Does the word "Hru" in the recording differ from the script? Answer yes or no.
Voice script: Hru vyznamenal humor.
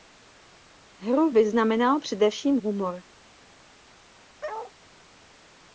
no